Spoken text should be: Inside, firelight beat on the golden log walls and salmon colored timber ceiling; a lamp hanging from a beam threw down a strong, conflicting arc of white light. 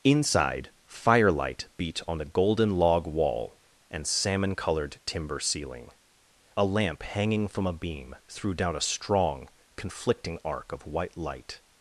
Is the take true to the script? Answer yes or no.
no